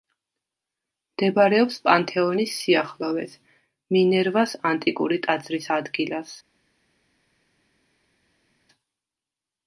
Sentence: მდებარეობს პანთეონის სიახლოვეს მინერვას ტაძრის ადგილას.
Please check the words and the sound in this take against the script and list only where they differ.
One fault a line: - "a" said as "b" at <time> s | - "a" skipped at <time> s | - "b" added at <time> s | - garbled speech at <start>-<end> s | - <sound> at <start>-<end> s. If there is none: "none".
- "ანტიკური" added at 4.7 s